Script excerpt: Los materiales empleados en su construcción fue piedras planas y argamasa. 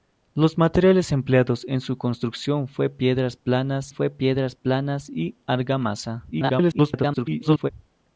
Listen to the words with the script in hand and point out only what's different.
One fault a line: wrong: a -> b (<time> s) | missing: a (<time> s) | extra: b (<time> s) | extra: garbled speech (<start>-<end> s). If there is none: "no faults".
extra: fue piedras planas (3.9 s)
extra: garbled speech (6.3-7.7 s)